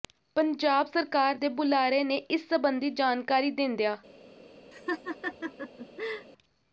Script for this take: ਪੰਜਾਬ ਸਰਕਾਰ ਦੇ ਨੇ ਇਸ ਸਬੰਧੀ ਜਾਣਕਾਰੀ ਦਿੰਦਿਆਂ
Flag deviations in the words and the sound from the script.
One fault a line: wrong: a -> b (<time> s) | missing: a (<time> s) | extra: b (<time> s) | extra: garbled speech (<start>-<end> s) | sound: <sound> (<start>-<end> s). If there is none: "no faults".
extra: ਬੁਲਾਰੇ (1.5 s)
sound: laugh (4.7-6.3 s)